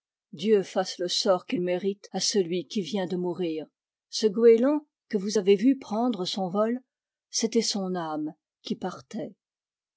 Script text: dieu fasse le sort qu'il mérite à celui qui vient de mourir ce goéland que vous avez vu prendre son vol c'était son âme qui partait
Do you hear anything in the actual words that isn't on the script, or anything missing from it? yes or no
no